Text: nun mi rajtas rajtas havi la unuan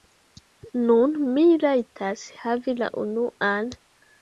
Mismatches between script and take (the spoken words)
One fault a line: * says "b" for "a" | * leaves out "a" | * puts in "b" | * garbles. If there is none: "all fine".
* leaves out "rajtas"